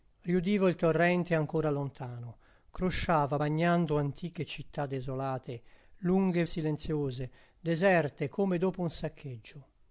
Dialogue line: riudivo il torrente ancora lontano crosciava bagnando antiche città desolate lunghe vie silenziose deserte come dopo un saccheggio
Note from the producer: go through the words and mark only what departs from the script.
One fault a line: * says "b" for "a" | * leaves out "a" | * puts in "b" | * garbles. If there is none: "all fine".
* leaves out "vie"